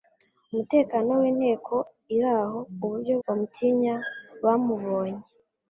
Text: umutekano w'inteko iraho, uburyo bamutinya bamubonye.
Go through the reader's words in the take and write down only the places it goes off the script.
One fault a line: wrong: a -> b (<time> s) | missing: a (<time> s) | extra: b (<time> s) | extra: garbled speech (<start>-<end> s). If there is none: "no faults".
no faults